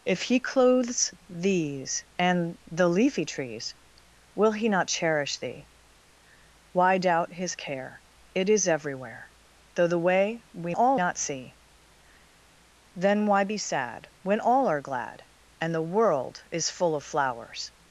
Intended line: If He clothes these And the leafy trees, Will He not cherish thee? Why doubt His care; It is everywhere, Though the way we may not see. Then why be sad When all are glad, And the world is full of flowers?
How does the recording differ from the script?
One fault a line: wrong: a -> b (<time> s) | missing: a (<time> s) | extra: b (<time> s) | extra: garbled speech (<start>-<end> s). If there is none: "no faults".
wrong: may -> all (10.7 s)